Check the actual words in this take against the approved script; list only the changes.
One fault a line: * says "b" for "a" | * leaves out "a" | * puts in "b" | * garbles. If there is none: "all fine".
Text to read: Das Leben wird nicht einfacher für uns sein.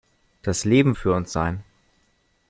* leaves out "wird nicht einfacher"